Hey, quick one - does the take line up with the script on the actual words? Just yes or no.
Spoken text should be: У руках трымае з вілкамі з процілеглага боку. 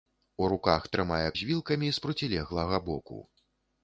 yes